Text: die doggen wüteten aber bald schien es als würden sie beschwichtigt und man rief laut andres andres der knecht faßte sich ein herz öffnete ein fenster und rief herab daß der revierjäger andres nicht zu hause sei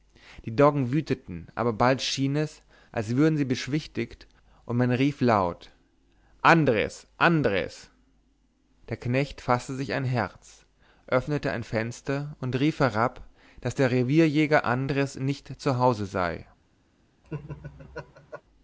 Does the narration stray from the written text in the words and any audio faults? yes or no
yes